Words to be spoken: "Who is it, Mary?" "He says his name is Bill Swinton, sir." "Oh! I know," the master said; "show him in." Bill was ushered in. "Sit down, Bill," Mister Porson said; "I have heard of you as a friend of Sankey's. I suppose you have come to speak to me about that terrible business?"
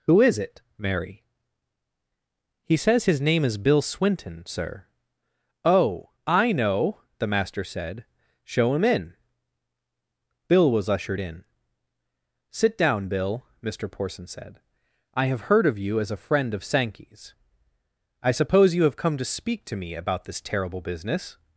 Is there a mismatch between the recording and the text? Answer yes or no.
yes